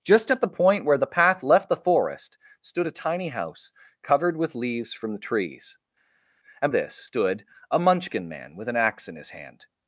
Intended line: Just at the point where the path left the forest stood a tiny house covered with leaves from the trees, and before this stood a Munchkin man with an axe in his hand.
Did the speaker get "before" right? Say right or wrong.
wrong